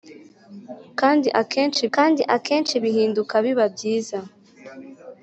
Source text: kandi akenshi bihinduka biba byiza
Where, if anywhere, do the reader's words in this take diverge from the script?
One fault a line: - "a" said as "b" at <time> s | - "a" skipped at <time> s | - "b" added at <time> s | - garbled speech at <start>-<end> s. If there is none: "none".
- "kandi akenshi" added at 1.9 s